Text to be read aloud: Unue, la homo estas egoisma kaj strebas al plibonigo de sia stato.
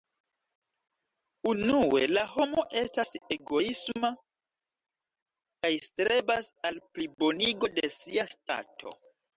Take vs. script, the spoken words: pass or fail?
pass